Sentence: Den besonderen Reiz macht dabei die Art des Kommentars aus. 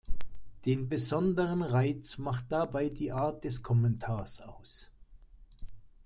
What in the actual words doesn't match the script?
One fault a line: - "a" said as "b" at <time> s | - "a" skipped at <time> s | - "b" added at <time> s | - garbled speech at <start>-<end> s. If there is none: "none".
none